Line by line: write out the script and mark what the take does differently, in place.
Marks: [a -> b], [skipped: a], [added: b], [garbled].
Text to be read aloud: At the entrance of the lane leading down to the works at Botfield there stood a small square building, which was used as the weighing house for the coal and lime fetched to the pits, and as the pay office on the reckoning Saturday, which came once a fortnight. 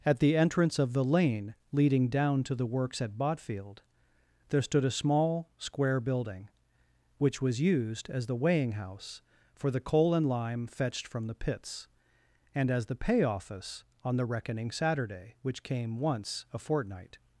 At the entrance of the lane leading down to the works at Botfield there stood a small square building, which was used as the weighing house for the coal and lime fetched [to -> from] the pits, and as the pay office on the reckoning Saturday, which came once a fortnight.